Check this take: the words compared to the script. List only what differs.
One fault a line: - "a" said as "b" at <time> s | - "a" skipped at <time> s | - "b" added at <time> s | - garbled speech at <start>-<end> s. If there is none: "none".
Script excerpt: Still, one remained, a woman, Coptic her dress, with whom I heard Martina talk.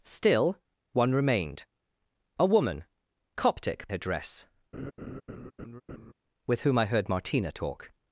none